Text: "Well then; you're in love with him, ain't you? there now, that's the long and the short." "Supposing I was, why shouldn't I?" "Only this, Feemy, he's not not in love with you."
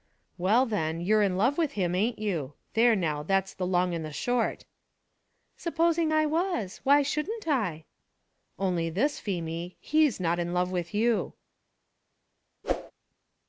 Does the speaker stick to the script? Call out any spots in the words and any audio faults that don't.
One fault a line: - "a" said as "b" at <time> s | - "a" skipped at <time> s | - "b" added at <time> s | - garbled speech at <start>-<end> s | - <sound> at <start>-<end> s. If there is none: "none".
- "not" skipped at 10.4 s
- whoosh at 12.6-12.9 s